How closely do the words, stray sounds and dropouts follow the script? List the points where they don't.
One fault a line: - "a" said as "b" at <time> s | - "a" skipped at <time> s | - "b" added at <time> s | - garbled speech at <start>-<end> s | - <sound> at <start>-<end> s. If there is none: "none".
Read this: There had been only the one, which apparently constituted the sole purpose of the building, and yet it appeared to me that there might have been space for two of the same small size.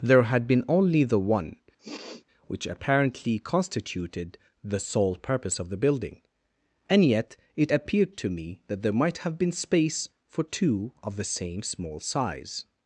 - sniff at 1.8-2.2 s